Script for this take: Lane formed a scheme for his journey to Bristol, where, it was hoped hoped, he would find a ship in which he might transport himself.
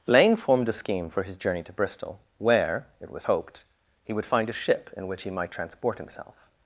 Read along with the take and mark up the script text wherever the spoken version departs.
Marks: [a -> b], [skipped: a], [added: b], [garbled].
Lane formed a scheme for his journey to Bristol, where, it was hoped [skipped: hoped,] he would find a ship in which he might transport himself.